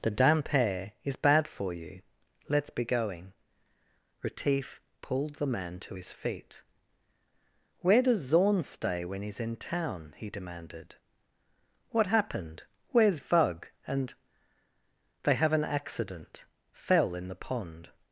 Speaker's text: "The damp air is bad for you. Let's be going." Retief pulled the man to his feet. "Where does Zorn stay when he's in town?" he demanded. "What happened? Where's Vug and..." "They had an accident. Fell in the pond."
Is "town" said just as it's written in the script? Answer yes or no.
yes